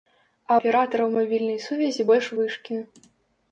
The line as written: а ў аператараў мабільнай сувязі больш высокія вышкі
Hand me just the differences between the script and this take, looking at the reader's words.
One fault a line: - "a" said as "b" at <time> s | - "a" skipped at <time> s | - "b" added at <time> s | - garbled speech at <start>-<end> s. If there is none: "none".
- "ў" skipped at 0.6 s
- "высокія" skipped at 2.3 s